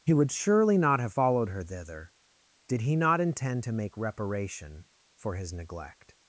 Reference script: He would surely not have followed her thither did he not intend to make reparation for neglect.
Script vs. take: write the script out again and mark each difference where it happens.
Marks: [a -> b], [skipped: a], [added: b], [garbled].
He would surely not have followed her thither did he not intend to make reparation for [added: his] neglect.